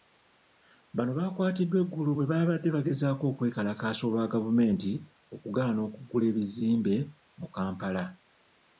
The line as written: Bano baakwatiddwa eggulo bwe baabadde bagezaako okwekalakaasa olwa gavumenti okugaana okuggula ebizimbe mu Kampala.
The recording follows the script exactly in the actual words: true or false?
true